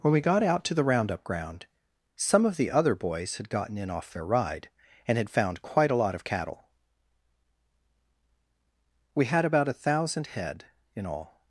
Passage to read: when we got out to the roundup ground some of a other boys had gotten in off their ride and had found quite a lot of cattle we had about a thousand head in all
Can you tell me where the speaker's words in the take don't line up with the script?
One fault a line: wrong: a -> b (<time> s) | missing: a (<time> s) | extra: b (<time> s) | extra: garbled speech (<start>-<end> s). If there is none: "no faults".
wrong: a -> the (2.6 s)